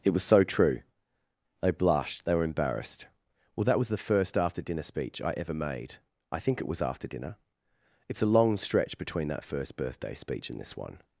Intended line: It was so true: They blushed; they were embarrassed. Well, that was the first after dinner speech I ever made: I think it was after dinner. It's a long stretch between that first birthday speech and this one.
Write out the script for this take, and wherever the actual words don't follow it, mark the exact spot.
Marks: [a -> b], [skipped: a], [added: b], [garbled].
It was so true: They blushed; they were embarrassed. Well, that was the first after dinner speech I ever made: I think it was after dinner. It's a long stretch between that first birthday speech and this one.